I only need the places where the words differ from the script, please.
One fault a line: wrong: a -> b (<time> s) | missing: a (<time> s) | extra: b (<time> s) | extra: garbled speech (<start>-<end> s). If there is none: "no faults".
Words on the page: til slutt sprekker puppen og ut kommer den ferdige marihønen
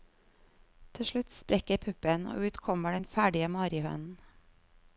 no faults